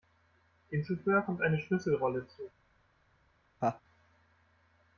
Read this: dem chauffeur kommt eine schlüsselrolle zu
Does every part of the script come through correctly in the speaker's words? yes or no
yes